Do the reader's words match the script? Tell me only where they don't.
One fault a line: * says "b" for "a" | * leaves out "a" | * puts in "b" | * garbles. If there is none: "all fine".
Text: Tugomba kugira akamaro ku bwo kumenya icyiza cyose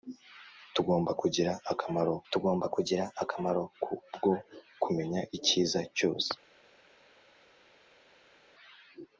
* puts in "tugomba kugira akamaro"